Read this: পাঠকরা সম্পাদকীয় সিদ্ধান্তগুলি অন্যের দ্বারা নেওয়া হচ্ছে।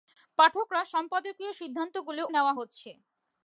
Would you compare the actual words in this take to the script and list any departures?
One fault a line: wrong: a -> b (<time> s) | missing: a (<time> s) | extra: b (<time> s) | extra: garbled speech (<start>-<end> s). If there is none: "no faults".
missing: অন্যের দ্বারা (2.2 s)